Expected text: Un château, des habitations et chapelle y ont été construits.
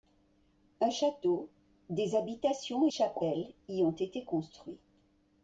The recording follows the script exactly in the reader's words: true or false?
true